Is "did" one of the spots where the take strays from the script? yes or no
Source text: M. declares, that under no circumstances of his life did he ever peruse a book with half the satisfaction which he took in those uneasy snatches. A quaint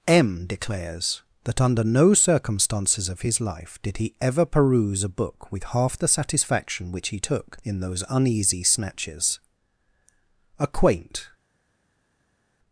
no